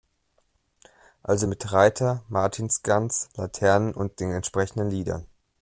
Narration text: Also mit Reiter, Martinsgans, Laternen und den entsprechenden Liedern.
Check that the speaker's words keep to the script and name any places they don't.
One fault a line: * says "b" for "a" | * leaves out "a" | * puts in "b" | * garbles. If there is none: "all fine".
all fine